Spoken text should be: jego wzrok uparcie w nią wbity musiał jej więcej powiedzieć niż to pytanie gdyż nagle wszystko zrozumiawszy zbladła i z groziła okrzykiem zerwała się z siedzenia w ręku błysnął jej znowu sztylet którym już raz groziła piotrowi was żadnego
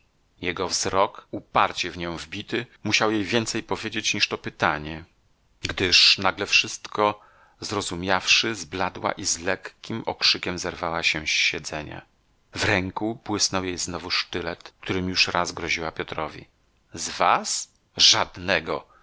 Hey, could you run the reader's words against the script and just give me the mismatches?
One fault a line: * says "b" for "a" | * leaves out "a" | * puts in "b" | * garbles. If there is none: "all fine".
* says "lekkim" for "groziła"
* puts in "z"